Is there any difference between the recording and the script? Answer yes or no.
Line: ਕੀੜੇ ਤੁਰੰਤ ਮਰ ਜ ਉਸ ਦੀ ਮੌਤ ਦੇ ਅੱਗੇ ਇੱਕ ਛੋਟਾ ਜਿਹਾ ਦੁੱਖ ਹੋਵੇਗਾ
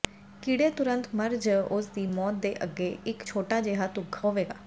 no